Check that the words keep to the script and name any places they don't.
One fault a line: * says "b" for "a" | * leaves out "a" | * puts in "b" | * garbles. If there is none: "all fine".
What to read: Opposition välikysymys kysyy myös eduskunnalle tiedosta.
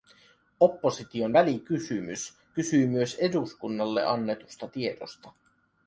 * puts in "annetusta"